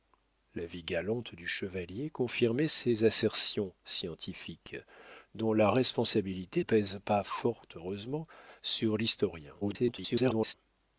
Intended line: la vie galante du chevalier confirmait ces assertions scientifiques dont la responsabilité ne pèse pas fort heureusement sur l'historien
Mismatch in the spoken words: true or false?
true